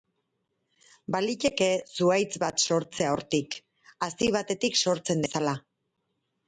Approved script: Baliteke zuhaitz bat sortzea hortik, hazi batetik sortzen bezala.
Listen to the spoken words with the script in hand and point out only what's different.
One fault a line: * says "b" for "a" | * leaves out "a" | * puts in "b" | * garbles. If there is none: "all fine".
all fine